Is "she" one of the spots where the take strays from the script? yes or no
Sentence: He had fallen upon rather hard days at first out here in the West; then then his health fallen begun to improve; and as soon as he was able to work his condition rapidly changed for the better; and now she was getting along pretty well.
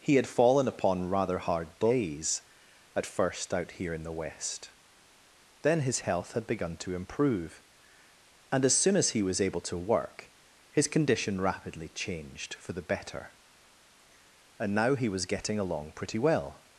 yes